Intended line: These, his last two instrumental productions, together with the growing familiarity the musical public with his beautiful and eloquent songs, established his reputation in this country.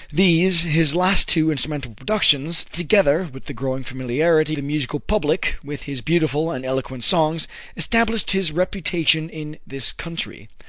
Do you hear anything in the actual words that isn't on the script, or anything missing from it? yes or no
no